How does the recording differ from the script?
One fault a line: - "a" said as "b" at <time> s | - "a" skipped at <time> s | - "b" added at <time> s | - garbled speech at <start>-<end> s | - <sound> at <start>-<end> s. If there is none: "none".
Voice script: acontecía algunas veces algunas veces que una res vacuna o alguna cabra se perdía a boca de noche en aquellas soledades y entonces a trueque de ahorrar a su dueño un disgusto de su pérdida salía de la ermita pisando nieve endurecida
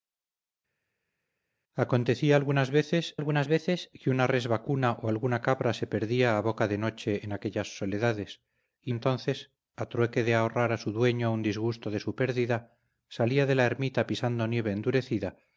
none